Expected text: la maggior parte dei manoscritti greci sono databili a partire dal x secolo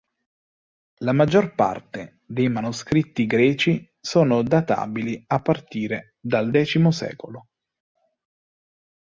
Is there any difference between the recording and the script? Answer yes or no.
no